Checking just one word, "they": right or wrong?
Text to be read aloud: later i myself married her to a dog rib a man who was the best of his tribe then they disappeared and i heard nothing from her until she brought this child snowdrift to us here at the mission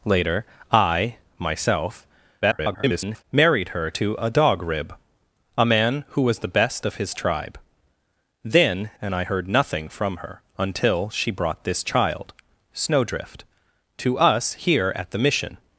wrong